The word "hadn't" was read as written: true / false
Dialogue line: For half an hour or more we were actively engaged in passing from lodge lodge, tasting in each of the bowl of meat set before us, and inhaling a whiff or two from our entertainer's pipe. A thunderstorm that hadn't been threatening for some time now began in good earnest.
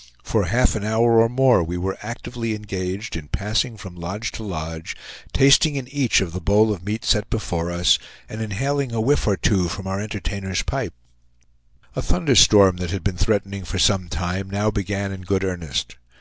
false